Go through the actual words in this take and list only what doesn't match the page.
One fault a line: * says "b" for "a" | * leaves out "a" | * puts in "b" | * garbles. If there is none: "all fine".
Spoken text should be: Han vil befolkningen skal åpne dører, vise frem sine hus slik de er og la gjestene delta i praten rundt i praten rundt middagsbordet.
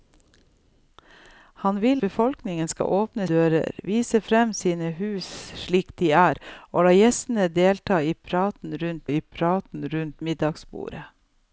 all fine